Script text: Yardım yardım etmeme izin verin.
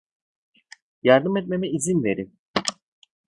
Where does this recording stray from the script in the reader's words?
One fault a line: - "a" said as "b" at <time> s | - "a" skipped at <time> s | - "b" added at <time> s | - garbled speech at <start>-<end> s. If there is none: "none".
- "yardım" skipped at 1.4 s